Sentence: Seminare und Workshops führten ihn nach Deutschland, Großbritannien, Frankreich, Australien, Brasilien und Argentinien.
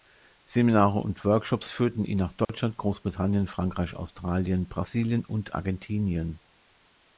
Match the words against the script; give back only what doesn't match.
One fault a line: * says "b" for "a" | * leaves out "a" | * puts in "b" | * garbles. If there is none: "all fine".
all fine